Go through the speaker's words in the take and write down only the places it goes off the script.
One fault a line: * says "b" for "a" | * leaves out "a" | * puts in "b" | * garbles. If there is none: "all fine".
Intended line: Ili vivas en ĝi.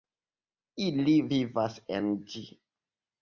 all fine